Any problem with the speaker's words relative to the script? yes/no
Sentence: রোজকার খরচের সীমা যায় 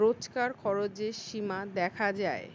yes